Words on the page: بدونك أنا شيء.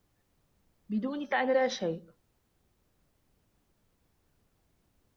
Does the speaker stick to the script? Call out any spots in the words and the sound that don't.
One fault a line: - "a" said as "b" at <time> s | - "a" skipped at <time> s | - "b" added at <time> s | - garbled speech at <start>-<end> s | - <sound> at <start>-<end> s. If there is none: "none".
- "لا" added at 1.5 s